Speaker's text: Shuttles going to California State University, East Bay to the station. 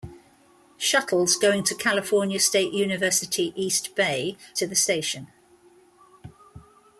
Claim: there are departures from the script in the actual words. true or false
false